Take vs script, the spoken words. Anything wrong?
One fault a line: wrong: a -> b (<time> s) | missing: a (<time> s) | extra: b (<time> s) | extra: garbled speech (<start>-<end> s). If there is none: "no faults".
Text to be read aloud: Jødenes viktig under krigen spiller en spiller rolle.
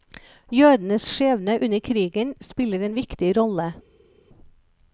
wrong: viktig -> skjebne (1.0 s)
wrong: spiller -> viktig (3.0 s)